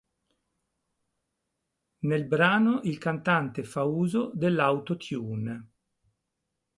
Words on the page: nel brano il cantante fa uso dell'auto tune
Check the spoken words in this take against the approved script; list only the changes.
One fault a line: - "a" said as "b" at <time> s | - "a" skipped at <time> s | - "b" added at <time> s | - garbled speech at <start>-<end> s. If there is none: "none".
none